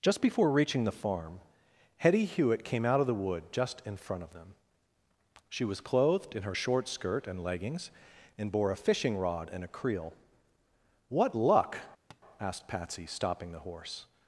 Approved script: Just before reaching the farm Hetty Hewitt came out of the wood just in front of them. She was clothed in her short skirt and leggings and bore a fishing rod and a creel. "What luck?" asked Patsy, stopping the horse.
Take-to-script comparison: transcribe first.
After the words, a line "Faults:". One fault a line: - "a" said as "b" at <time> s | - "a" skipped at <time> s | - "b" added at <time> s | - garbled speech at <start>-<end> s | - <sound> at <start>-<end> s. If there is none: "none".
Just before reaching the farm Hetty Hewitt came out of the wood just in front of them. She was clothed in her short skirt and leggings and bore a fishing rod and a creel. "What luck?" asked Patsy, stopping the horse.
Faults:
- tap at 12.1-12.2 s